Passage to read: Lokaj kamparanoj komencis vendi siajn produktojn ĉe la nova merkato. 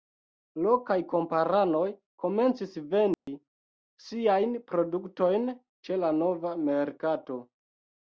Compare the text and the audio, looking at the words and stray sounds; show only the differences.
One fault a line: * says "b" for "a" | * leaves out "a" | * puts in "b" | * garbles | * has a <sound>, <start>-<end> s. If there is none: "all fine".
* has a dropout, 3.1-3.3 s